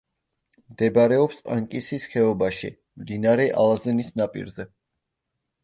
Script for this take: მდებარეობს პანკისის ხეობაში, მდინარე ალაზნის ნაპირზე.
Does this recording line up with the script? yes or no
yes